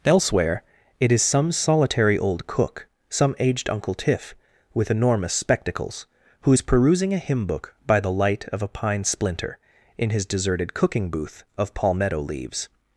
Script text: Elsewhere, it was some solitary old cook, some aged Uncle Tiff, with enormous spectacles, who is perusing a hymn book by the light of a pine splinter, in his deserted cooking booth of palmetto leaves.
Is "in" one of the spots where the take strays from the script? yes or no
no